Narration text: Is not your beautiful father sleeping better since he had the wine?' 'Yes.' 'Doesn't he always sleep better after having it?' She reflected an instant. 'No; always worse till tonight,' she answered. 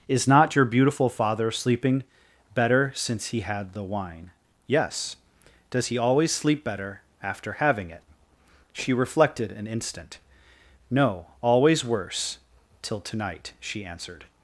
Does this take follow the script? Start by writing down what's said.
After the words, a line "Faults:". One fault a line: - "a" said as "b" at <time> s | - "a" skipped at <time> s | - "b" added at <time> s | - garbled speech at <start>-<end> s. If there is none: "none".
Is not your beautiful father sleeping better since he had the wine?' 'Yes.' 'Does he always sleep better after having it?' She reflected an instant. 'No; always worse till tonight,' she answered.
Faults:
- "Doesn't" said as "Does" at 5.7 s